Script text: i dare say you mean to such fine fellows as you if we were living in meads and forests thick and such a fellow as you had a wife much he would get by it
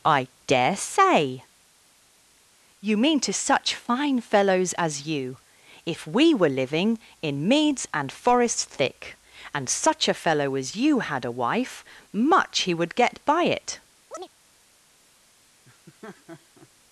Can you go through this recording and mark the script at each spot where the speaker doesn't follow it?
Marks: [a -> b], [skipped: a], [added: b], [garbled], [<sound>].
i dare say you mean to such fine fellows as you if we were living in meads and forests thick and such a fellow as you had a wife much he would get by it [chirp] [laugh]